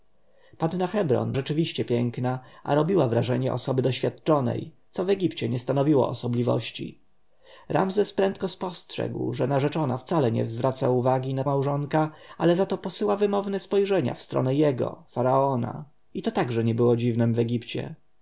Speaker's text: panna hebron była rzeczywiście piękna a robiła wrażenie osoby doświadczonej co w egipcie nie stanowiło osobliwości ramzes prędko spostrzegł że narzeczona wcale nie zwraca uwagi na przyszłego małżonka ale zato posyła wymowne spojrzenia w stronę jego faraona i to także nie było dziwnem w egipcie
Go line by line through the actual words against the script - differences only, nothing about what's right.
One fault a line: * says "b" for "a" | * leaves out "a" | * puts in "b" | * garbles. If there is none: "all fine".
* leaves out "była"
* leaves out "przyszłego"